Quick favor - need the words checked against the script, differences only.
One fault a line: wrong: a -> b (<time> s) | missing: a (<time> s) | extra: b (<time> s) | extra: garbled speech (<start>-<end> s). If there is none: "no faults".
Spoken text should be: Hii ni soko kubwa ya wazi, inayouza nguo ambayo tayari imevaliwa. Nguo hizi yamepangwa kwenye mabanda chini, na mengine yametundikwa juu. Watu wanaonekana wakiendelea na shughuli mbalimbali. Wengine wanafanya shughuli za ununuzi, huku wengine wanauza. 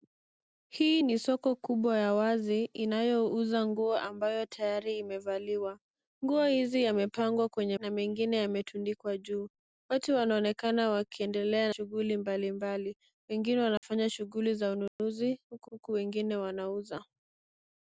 missing: mabanda chini (7.8 s)
missing: na (11.7 s)
extra: huku (15.7 s)